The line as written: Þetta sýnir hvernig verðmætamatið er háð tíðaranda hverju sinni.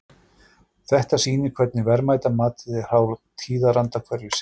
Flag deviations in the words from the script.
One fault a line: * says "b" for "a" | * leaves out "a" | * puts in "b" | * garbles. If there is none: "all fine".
all fine